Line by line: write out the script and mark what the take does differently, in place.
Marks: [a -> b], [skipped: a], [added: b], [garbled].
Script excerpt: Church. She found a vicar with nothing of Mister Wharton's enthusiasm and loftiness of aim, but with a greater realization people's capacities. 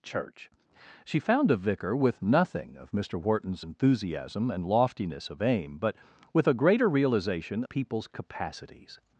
Church. She found a vicar with nothing of Mister Wharton's enthusiasm and loftiness of aim, but with a greater realization people's capacities.